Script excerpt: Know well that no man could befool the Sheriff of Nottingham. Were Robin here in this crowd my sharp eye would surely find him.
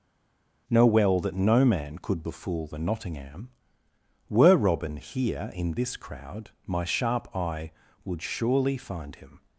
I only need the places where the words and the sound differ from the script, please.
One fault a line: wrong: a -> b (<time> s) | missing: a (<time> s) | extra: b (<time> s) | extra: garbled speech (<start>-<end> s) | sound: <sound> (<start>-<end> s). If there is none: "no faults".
missing: Sheriff of (2.8 s)